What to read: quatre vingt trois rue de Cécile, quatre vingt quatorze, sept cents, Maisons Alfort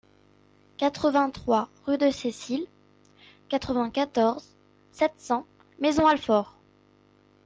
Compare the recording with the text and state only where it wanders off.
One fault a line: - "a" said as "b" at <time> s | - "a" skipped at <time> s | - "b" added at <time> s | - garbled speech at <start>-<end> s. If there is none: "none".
none